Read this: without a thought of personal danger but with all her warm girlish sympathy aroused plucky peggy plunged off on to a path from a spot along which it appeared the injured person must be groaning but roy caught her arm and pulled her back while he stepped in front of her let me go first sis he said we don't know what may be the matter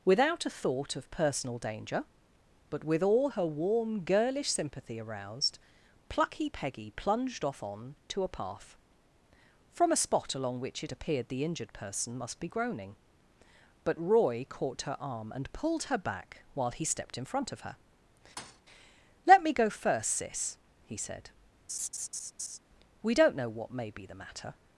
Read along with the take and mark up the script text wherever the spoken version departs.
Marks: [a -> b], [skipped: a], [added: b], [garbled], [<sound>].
without a thought of personal danger but with all her warm girlish sympathy aroused plucky peggy plunged off on to a path from a spot along which it appeared the injured person must be groaning but roy caught her arm and pulled her back while he stepped in front of her [thud] let me go first sis he said [laugh] we don't know what may be the matter